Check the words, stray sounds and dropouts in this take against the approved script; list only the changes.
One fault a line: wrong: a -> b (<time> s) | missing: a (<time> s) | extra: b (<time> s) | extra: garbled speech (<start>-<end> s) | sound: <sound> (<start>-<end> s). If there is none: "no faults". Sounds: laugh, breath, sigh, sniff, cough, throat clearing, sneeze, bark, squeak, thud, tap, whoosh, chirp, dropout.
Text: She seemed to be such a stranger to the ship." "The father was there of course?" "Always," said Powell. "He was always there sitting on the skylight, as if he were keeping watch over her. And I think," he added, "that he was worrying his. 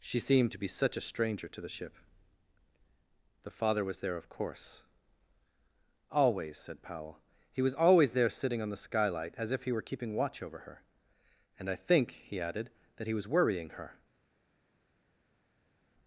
wrong: his -> her (13.7 s)